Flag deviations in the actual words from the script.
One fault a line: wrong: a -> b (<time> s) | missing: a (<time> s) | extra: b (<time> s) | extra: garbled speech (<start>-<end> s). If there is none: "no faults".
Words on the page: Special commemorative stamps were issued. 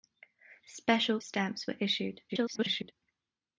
missing: commemorative (1.2 s)
extra: garbled speech (2.3-2.9 s)